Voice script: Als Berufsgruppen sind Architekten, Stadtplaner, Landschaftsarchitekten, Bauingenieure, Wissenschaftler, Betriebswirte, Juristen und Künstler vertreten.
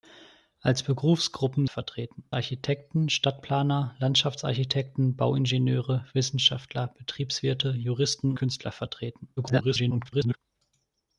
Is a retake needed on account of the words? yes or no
yes